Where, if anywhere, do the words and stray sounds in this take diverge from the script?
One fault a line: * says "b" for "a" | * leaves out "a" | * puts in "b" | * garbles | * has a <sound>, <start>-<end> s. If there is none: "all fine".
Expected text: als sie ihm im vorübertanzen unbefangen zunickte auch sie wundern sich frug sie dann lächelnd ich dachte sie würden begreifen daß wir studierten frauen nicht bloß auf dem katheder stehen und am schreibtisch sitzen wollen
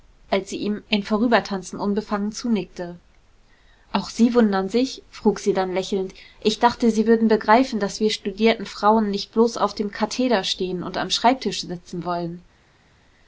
all fine